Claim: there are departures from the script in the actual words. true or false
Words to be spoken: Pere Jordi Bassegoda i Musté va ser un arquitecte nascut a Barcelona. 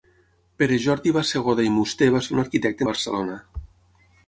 true